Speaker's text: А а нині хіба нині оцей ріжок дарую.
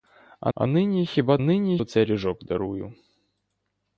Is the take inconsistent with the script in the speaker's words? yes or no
no